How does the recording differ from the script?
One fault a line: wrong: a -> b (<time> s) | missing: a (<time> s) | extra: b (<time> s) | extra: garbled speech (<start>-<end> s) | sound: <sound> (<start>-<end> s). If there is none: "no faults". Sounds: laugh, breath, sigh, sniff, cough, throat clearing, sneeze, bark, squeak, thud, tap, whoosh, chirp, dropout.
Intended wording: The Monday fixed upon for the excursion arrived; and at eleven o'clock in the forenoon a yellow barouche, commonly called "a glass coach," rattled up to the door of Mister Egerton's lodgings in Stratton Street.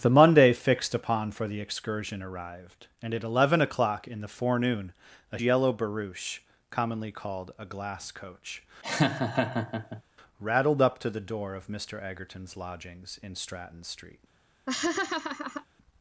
sound: laugh (8.8-10.0 s)
sound: laugh (14.7-15.7 s)